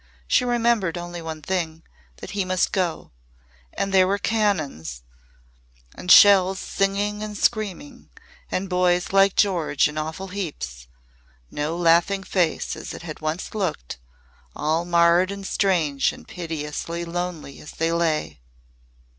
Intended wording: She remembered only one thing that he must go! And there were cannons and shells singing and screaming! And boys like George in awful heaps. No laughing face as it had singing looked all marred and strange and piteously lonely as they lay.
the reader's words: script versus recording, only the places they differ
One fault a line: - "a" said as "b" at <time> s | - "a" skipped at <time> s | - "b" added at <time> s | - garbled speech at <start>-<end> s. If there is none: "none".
- "singing" said as "once" at 13.2 s